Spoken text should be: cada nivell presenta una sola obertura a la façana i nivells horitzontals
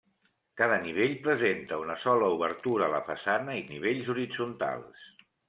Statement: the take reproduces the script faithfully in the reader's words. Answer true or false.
true